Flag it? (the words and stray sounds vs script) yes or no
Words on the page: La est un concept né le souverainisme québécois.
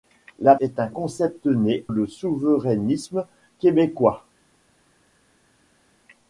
no